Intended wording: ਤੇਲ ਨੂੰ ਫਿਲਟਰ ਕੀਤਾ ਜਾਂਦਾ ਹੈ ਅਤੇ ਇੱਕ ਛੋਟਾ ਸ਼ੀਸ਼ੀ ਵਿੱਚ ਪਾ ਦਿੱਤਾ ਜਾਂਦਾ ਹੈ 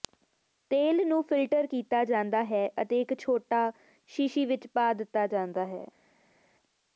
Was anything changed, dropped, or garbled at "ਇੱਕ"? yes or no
no